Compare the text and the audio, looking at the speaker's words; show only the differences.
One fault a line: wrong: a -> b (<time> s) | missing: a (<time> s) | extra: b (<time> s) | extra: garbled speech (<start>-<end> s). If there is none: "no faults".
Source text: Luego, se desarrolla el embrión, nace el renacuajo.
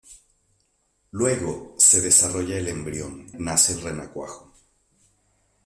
no faults